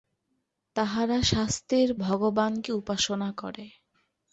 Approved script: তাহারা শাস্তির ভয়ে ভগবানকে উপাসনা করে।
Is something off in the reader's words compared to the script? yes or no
yes